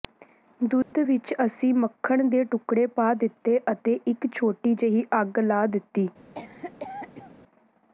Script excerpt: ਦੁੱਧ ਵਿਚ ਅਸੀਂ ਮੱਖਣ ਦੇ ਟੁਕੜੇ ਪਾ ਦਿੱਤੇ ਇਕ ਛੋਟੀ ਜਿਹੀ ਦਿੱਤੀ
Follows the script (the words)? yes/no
no